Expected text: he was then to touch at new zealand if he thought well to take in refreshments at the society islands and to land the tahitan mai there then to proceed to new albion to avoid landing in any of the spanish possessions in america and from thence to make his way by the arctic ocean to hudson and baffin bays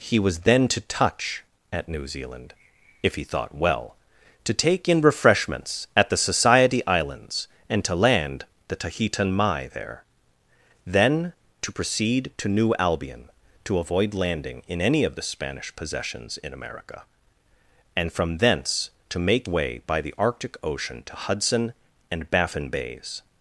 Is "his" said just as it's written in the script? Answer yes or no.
no